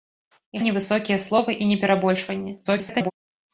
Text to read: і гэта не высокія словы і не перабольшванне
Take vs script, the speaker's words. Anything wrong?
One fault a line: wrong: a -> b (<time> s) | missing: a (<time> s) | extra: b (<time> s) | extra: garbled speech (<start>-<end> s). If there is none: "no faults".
missing: гэта (0.6 s)
extra: garbled speech (2.6-3.1 s)